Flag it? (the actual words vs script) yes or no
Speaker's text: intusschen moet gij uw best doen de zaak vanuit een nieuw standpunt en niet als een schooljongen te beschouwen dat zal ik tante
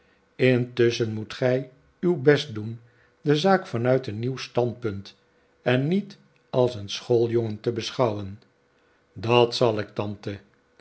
no